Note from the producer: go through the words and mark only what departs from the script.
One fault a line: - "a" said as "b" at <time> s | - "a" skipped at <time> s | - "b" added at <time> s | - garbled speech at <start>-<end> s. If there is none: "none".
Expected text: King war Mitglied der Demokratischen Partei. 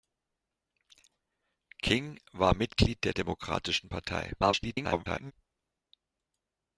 - garbled speech at 4.4-5.3 s